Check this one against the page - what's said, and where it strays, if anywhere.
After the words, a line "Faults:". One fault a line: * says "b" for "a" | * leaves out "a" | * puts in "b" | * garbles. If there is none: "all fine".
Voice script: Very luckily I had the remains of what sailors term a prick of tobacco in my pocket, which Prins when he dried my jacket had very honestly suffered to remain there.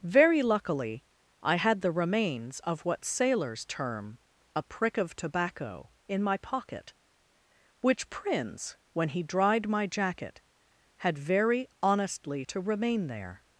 Very luckily I had the remains of what sailors term a prick of tobacco in my pocket, which Prins when he dried my jacket had very honestly to remain there.
Faults:
* leaves out "suffered"